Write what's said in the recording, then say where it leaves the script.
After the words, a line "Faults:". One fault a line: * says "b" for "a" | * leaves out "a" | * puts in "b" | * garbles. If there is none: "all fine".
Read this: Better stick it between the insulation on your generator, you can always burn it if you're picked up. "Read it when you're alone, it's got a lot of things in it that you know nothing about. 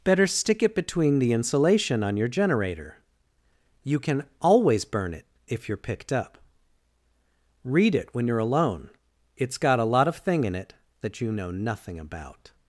Better stick it between the insulation on your generator, you can always burn it if you're picked up. "Read it when you're alone, it's got a lot of thing in it that you know nothing about.
Faults:
* says "thing" for "things"